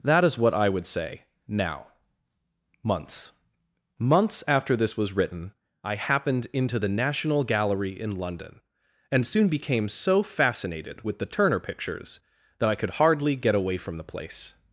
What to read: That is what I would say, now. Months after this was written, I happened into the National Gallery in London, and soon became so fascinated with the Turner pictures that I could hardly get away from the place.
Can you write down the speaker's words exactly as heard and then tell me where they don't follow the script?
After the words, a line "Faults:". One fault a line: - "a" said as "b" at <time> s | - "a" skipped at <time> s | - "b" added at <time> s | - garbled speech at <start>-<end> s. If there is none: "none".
That is what I would say, now. Months Months after this was written, I happened into the National Gallery in London, and soon became so fascinated with the Turner pictures that I could hardly get away from the place.
Faults:
- "Months" added at 4.0 s